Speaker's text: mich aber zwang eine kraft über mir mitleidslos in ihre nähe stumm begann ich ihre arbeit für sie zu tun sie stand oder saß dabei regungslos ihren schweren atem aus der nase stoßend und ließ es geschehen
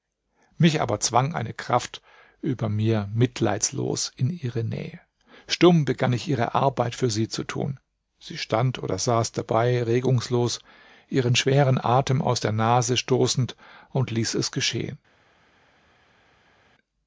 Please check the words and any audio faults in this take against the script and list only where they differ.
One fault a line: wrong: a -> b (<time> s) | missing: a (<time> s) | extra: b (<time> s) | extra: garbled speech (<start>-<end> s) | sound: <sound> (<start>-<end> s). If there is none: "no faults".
no faults